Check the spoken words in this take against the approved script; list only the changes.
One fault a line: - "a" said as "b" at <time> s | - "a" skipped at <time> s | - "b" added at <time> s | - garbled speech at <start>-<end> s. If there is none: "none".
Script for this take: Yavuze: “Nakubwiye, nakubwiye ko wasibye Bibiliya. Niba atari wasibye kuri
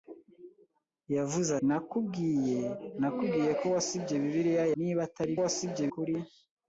none